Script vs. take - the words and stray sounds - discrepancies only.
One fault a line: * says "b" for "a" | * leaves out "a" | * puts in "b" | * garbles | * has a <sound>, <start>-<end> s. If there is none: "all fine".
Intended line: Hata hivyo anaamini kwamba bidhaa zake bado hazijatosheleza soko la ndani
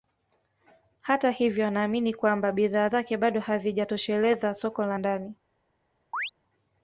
* has a chirp, 6.1-6.3 s